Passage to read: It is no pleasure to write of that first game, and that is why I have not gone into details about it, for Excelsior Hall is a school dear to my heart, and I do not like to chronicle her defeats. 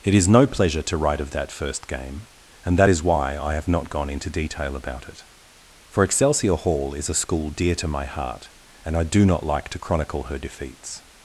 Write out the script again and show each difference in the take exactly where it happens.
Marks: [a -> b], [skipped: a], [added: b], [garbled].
It is no pleasure to write of that first game, and that is why I have not gone into [details -> detail] about it, for Excelsior Hall is a school dear to my heart, and I do not like to chronicle her defeats.